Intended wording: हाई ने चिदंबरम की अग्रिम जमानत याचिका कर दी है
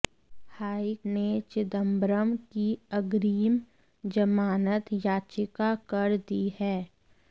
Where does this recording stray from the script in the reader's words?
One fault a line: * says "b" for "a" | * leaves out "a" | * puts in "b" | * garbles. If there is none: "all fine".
all fine